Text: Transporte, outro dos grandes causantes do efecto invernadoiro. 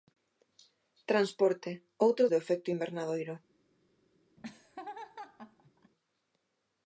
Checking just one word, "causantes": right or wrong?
wrong